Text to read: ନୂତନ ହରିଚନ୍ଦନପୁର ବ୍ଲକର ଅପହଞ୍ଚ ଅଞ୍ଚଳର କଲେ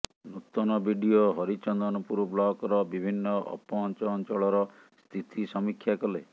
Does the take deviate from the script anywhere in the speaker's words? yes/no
yes